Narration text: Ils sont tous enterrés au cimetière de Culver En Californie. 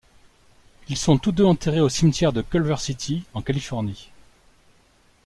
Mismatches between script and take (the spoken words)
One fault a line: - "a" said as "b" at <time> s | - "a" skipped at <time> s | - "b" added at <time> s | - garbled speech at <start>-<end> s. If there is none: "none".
- "deux" added at 1.3 s
- "City" added at 2.8 s